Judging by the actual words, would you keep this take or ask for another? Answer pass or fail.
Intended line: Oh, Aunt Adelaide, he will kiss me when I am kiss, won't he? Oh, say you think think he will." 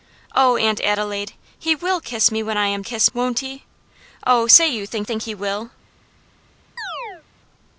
pass